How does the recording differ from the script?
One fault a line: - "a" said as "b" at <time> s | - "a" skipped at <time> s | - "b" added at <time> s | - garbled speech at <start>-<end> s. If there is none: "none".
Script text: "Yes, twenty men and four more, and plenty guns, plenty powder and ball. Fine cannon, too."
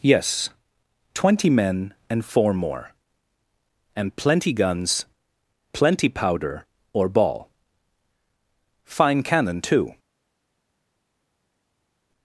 - "and" said as "or" at 6.9 s